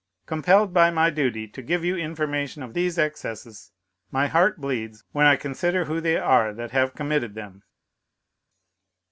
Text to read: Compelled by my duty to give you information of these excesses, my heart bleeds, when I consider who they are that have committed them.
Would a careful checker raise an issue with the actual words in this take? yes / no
no